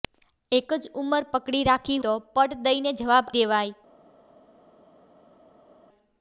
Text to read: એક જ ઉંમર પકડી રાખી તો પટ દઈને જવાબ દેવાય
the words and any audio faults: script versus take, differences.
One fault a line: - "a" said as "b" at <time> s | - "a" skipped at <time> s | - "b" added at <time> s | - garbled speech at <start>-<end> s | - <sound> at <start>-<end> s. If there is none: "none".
none